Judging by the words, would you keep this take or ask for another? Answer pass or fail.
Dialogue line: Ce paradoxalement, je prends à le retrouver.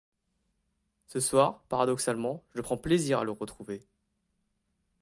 fail